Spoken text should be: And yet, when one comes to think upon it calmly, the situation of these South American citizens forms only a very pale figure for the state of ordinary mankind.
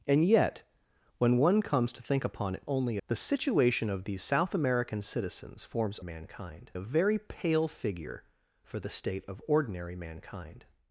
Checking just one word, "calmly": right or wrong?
wrong